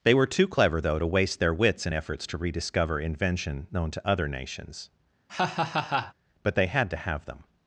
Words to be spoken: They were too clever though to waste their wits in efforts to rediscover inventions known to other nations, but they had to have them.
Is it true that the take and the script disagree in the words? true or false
true